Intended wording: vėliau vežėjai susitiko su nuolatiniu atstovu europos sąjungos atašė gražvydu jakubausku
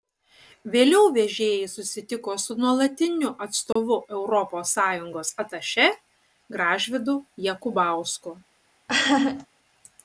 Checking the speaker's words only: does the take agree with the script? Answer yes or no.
yes